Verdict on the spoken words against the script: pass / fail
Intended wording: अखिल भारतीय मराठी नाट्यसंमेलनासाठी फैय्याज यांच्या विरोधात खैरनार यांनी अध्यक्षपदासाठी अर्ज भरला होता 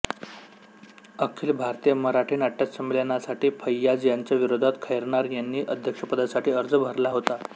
pass